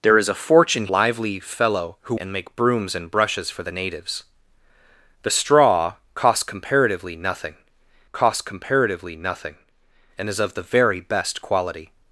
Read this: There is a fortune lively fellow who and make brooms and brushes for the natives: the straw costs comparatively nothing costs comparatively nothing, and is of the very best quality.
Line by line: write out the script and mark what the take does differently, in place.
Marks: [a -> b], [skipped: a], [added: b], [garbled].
There is a fortune lively fellow who and make brooms and brushes for the natives: the straw costs comparatively nothing costs comparatively nothing, and is of the very best quality.